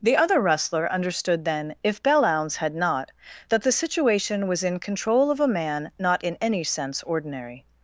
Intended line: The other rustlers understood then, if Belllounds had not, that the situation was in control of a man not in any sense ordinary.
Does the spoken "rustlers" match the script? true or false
false